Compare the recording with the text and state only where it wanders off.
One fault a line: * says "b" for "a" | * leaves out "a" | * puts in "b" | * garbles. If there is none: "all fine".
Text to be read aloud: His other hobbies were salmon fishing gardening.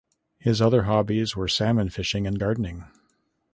* puts in "and"